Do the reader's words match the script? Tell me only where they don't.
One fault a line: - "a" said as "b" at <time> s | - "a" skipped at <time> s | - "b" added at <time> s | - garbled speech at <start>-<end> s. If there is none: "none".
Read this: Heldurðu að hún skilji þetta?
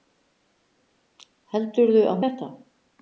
- "hún skilji" skipped at 2.2 s